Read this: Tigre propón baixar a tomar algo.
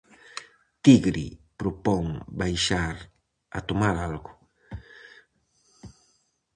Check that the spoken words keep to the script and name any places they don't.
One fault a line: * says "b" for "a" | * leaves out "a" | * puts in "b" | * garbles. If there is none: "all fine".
all fine